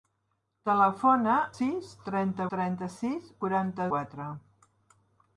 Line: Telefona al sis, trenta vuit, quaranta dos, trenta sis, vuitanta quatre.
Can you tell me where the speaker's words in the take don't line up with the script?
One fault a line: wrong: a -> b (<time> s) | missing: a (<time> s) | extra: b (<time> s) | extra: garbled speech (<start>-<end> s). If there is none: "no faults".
missing: al (1.4 s)
missing: vuit quaranta dos (2.5 s)
wrong: vuitanta -> quaranta (3.4 s)